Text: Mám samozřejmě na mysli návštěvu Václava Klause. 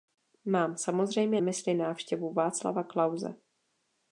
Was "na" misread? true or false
true